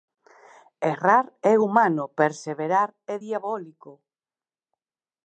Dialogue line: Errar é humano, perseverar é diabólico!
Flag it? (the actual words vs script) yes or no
no